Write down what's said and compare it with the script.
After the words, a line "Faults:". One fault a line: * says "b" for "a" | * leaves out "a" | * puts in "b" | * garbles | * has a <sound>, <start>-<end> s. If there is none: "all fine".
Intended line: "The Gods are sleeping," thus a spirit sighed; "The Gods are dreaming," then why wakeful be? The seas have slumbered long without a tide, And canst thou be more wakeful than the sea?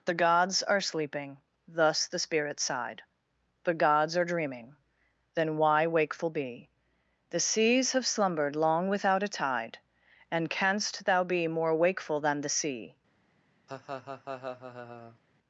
"The Gods are sleeping," thus the spirit sighed; "The Gods are dreaming," then why wakeful be? The seas have slumbered long without a tide, And canst thou be more wakeful than the sea?
Faults:
* says "the" for "a"
* has a laugh, 13.7-15.2 s